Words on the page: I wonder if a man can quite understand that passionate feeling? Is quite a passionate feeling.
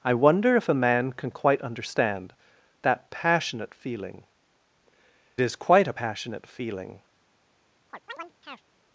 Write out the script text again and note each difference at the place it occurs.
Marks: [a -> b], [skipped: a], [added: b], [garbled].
I wonder if a man can quite understand that passionate feeling? Is quite a passionate feeling.